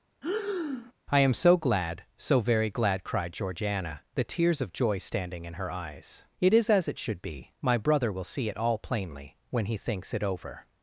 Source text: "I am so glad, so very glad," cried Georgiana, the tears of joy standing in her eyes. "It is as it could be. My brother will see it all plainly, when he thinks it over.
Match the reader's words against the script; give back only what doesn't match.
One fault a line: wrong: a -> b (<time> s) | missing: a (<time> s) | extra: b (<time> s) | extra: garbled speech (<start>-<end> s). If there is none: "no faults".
wrong: could -> should (7.0 s)